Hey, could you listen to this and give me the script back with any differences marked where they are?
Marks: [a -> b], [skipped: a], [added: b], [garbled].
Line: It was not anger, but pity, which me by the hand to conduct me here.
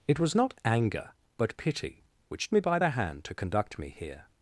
It was not anger, but pity, which me by the hand to conduct me here.